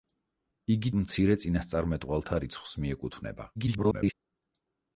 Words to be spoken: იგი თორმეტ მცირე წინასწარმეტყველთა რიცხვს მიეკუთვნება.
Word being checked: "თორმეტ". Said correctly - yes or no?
no